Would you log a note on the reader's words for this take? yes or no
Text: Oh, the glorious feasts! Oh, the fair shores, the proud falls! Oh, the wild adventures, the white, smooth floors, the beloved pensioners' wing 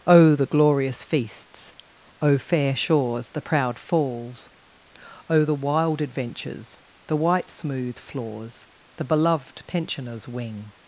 yes